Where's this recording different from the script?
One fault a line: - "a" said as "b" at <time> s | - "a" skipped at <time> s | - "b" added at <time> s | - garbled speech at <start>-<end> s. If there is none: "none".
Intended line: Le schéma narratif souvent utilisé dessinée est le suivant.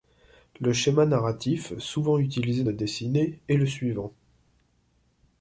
none